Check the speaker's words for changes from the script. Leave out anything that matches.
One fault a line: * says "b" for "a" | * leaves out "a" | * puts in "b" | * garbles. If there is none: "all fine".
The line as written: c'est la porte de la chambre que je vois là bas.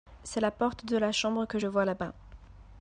all fine